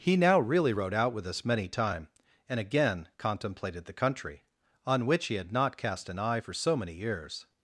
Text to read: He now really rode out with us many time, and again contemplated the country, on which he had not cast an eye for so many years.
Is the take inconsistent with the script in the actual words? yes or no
no